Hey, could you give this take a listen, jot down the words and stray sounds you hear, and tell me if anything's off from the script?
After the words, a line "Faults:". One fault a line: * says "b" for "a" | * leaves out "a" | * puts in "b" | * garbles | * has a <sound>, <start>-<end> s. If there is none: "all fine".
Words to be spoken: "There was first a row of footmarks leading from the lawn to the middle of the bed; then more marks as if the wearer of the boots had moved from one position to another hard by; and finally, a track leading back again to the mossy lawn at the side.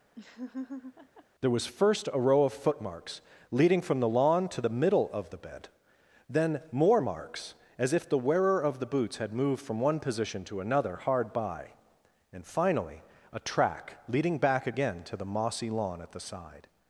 "There was first a row of footmarks leading from the lawn to the middle of the bed; then more marks as if the wearer of the boots had moved from one position to another hard by; and finally, a track leading back again to the mossy lawn at the side.
Faults:
* has a laugh, 0.2-1.3 s